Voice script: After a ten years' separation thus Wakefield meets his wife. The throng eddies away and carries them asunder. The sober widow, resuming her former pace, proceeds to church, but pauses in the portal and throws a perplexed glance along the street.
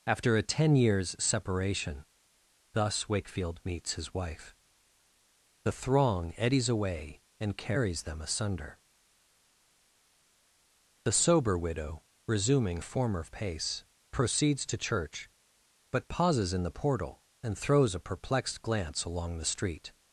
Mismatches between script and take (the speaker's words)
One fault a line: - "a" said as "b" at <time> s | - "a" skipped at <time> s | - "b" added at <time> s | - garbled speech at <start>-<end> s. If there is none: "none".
- "her" skipped at 12.8 s